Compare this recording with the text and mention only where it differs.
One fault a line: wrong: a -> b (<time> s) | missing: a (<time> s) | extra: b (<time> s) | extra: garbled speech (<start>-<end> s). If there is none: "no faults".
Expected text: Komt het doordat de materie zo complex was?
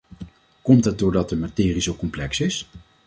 wrong: was -> is (2.4 s)